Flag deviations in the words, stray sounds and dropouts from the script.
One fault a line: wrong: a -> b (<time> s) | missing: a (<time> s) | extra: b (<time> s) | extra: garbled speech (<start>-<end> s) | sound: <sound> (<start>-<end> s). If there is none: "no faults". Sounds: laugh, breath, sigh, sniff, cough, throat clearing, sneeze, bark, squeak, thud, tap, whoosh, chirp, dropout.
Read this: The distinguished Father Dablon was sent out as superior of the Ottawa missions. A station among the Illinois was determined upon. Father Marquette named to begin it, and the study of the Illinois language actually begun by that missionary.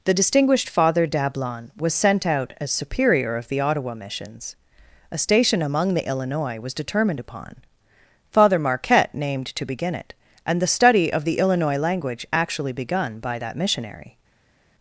no faults